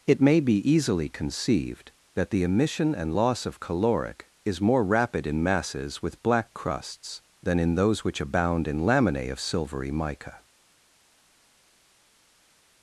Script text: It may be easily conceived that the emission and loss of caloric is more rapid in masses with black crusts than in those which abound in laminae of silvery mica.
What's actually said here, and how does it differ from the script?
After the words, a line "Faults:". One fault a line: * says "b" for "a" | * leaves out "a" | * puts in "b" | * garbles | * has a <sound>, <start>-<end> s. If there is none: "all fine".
It may be easily conceived that the emission and loss of caloric is more rapid in masses with black crusts than in those which abound in laminae of silvery mica.
Faults:
all fine